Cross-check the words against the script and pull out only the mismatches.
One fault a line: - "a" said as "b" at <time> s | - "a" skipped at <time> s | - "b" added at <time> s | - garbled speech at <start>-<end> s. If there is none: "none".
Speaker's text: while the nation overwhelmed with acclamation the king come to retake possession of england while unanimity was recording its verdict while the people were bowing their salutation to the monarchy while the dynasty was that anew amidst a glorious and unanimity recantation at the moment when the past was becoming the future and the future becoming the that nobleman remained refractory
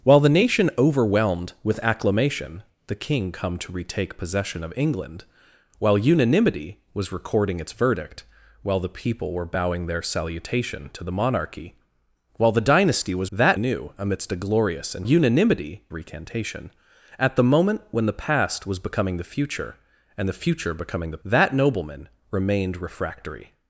none